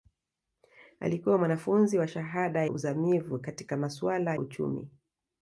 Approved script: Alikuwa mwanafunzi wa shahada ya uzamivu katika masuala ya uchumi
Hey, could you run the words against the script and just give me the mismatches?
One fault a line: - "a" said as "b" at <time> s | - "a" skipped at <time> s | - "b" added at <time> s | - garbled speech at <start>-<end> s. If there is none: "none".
- "ya" skipped at 2.6 s
- "ya" skipped at 4.4 s